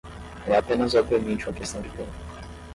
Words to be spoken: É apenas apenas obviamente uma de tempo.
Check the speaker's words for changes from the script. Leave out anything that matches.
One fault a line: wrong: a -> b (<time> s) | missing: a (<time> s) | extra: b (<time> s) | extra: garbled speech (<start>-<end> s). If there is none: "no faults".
missing: apenas (0.9 s)
extra: questão (1.5 s)